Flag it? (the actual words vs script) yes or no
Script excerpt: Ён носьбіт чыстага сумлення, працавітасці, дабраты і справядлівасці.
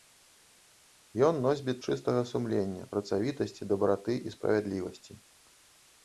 no